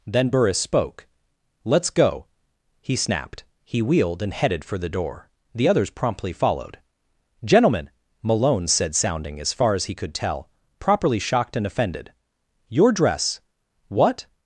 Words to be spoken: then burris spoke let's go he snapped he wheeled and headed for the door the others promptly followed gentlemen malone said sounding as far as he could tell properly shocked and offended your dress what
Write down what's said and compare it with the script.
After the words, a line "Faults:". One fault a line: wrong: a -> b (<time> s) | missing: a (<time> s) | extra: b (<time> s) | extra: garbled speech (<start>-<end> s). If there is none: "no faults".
then burris spoke let's go he snapped he wheeled and headed for the door the others promptly followed gentlemen malone said sounding as far as he could tell properly shocked and offended your dress what
Faults:
no faults